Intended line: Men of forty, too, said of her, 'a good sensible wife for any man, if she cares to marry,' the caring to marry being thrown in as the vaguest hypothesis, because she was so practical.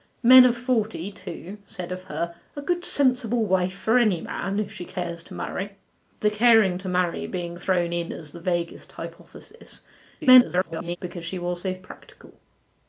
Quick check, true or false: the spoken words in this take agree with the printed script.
false